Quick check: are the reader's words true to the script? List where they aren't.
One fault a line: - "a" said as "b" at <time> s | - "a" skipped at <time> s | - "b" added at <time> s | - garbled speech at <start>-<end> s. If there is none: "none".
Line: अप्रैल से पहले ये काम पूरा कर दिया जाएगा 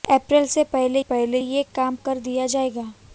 - "पहले" added at 1.0 s
- "पूरा" skipped at 2.0 s